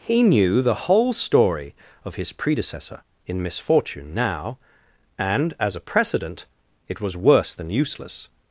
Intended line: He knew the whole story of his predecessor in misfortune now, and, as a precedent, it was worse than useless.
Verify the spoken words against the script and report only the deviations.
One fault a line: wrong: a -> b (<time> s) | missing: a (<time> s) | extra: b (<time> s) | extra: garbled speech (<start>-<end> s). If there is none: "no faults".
no faults